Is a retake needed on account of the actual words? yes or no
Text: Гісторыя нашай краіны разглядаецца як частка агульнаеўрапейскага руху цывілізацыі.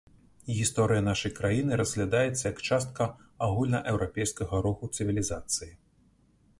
no